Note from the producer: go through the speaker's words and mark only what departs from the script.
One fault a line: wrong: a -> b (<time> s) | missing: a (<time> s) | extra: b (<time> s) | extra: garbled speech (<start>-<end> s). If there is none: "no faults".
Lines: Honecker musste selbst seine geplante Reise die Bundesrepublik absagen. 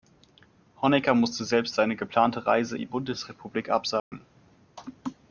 no faults